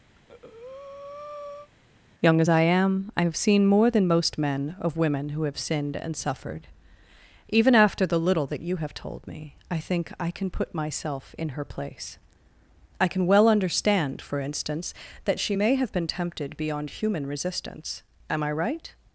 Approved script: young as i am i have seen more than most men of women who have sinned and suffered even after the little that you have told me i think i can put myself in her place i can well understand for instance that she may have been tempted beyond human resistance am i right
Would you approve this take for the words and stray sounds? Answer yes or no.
no